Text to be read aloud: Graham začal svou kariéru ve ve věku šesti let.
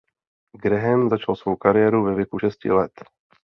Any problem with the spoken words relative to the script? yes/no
yes